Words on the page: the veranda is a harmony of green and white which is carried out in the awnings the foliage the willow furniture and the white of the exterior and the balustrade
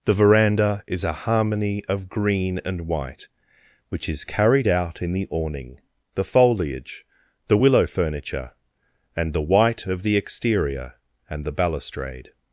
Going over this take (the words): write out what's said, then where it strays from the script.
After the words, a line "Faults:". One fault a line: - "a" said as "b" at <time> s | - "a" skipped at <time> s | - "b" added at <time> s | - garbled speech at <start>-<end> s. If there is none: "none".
the veranda is a harmony of green and white which is carried out in the awning the foliage the willow furniture and the white of the exterior and the balustrade
Faults:
- "awnings" said as "awning" at 5.3 s